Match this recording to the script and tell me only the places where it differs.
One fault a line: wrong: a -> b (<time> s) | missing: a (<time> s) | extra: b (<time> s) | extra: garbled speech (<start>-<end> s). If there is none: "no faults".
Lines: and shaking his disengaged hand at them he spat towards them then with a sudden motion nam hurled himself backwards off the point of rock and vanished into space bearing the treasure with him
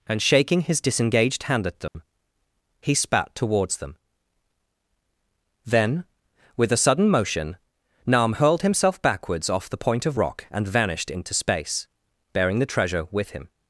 no faults